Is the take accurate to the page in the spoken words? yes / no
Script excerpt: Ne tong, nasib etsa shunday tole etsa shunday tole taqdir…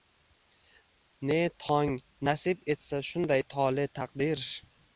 no